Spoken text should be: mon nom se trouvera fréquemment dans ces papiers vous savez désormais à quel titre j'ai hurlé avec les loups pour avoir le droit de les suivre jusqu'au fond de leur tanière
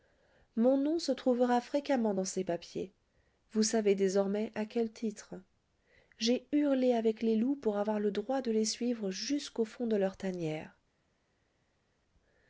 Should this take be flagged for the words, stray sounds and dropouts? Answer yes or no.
no